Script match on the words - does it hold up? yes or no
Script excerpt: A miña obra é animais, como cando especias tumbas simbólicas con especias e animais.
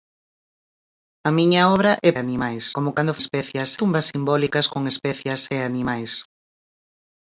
yes